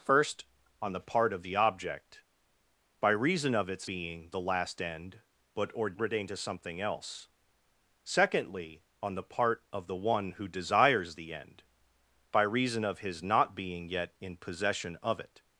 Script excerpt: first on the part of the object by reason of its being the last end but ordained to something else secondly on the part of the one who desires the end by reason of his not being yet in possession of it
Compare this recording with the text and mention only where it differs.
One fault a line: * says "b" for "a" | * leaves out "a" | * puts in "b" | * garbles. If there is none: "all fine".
all fine